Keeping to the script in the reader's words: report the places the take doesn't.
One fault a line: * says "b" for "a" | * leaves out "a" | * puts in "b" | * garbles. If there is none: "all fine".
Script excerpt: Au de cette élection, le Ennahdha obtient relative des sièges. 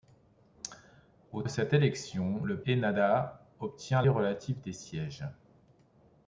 all fine